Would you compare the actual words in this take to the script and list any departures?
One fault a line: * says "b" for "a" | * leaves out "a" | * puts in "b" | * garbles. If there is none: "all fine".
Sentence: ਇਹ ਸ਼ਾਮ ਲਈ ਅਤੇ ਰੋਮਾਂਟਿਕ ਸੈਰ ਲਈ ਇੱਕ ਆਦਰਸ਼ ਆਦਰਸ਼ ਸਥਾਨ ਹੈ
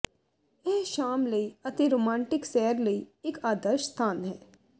* leaves out "ਆਦਰਸ਼"